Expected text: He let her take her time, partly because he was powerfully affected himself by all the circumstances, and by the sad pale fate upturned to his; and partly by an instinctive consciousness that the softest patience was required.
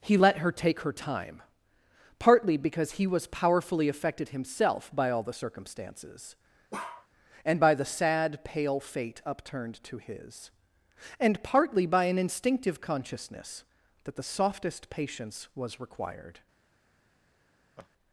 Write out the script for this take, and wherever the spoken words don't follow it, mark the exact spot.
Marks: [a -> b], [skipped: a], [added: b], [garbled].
He let her take her time, partly because he was powerfully affected himself by all the circumstances, and by the sad pale fate upturned to his; and partly by an instinctive consciousness that the softest patience was required.